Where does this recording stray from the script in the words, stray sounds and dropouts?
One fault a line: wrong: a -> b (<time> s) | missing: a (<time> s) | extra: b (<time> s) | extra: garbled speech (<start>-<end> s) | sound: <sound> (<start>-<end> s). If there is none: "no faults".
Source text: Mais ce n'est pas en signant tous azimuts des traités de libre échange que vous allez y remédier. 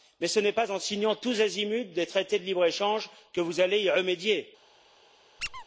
sound: squeak (5.4-5.6 s)